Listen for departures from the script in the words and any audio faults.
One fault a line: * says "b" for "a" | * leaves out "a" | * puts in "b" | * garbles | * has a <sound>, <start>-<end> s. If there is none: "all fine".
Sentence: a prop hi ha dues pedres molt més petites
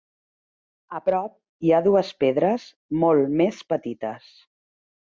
all fine